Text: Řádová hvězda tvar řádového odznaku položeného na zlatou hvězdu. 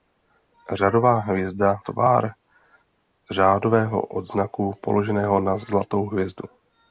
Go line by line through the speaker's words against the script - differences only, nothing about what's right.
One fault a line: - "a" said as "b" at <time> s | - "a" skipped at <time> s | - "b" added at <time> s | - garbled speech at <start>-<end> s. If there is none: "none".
none